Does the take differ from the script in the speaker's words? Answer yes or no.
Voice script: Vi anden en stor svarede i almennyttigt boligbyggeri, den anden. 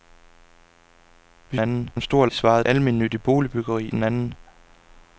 no